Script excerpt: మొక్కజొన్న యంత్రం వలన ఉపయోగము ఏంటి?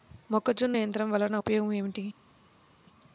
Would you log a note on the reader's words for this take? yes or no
no